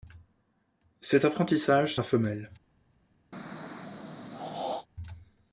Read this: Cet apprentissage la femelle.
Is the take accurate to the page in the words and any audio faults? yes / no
no